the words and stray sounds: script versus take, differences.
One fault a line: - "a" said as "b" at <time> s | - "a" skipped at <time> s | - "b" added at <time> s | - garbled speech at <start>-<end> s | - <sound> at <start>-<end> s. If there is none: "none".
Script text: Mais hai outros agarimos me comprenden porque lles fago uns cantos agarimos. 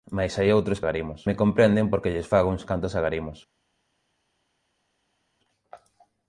none